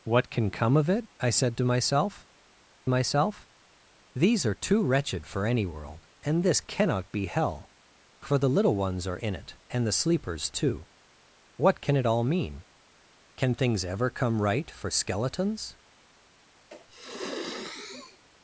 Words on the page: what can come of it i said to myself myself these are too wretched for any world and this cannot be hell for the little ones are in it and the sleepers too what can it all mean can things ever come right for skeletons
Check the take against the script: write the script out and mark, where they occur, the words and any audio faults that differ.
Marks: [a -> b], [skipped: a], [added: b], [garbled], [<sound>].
what can come of it i said to myself myself these are too wretched for any world and this cannot be hell for the little ones are in it and the sleepers too what can it all mean can things ever come right for skeletons [sniff]